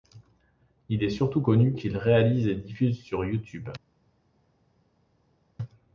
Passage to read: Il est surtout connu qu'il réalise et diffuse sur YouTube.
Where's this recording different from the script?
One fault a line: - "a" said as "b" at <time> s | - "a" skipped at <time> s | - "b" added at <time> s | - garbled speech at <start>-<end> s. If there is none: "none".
none